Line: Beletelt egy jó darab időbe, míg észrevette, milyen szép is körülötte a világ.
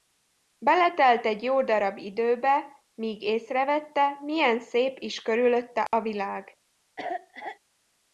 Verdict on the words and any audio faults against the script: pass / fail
fail